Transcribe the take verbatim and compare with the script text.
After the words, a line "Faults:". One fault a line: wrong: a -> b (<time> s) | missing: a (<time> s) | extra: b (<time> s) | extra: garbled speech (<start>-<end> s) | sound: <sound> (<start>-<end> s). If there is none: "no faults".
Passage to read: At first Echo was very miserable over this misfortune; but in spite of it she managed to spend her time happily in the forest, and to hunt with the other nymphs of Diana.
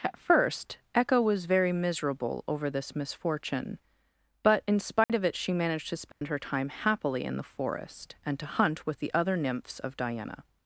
At first Echo was very miserable over this misfortune; but in spite of it she managed to spend her time happily in the forest, and to hunt with the other nymphs of Diana.
Faults:
sound: dropout (5.0-5.1 s)
sound: dropout (6.1-6.2 s)